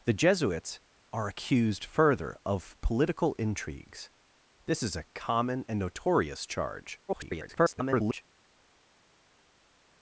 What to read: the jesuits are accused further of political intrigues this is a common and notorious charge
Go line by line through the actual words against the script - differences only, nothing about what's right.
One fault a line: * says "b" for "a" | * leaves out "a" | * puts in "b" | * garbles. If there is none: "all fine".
* garbles